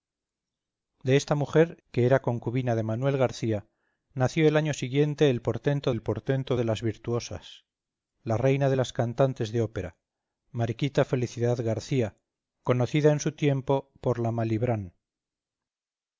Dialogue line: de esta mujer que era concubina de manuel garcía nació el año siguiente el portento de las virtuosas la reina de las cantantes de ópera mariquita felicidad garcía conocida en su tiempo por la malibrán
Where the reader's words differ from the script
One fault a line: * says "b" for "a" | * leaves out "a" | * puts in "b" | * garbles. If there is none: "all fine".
* puts in "el portento"